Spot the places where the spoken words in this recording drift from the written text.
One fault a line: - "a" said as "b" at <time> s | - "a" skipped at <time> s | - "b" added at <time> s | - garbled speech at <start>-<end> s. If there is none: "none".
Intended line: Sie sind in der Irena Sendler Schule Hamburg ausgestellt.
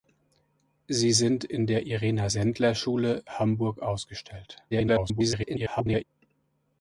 - garbled speech at 4.7-6.0 s